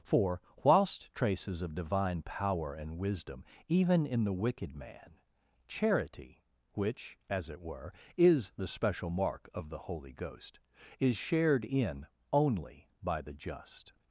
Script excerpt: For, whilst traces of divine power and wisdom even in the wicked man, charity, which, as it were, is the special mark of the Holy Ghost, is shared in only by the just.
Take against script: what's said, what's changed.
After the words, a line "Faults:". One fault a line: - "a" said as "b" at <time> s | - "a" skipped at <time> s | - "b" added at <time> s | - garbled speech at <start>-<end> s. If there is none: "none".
For, whilst traces of divine power and wisdom even in the wicked man, charity, which, as it were, is the special mark of the Holy Ghost, is shared in only by the just.
Faults:
none